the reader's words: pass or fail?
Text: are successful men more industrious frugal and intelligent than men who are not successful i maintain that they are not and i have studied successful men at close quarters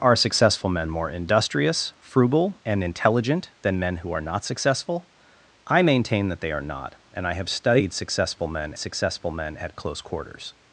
fail